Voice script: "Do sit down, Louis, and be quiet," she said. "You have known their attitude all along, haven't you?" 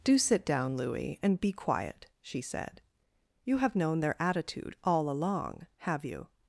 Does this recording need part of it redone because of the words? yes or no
yes